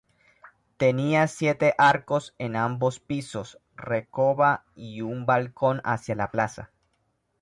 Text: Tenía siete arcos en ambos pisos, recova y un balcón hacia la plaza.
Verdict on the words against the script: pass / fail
pass